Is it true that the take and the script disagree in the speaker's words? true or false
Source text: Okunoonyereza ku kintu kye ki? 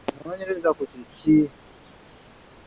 true